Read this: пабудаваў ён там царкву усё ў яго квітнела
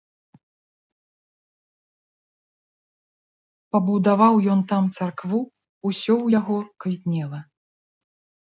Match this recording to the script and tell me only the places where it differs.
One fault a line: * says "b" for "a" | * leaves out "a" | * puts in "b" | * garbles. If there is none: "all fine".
all fine